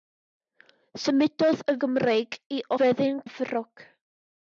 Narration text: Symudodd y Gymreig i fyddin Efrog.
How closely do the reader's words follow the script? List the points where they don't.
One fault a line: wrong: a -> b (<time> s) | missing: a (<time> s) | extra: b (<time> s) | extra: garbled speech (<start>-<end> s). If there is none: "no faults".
no faults